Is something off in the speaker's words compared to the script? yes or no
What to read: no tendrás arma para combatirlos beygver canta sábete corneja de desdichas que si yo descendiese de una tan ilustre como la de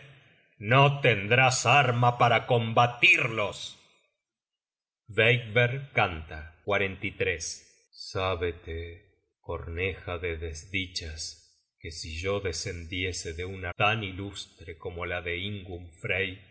no